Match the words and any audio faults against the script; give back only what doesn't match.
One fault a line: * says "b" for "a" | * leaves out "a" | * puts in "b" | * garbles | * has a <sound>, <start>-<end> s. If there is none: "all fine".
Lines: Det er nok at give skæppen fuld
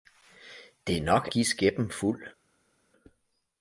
* leaves out "at"